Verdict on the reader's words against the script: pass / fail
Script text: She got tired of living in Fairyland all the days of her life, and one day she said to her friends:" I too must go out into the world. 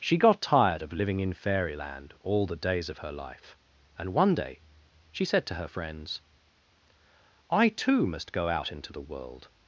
pass